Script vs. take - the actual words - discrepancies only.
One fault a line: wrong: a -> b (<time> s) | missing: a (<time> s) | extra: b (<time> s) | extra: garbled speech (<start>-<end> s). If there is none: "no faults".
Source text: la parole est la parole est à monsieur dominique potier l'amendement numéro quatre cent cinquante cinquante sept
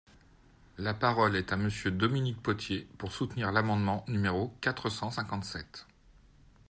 missing: la parole est (1.5 s)
extra: pour soutenir (3.0 s)
missing: cinquante (5.4 s)